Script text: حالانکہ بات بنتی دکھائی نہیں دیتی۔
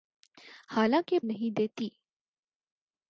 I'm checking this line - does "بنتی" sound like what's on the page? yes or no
no